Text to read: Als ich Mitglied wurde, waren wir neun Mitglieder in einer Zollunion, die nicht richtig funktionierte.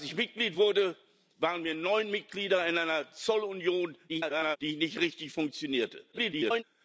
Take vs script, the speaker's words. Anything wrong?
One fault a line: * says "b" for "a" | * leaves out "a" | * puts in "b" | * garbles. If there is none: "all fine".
* garbles
* garbles